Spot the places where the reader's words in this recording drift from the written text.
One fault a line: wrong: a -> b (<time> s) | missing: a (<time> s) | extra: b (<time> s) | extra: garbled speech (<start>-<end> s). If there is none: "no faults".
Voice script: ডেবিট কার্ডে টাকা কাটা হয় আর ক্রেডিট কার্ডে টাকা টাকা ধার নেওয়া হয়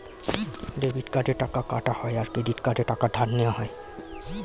missing: টাকা (3.1 s)